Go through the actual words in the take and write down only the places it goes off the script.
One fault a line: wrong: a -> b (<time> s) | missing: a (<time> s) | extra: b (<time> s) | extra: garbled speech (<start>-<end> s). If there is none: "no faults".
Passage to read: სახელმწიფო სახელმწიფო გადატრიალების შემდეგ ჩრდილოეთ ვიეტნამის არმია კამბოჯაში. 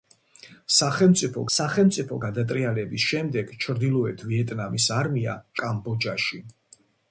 no faults